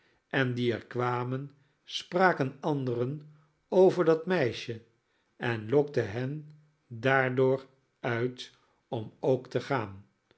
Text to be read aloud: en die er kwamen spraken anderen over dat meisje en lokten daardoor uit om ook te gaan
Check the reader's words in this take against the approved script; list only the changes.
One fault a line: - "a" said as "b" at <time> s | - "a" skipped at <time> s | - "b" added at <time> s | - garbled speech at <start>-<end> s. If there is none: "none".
- "hen" added at 6.1 s